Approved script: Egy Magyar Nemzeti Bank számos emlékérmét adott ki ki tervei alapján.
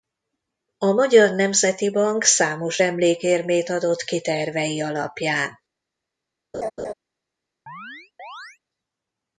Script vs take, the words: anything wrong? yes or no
yes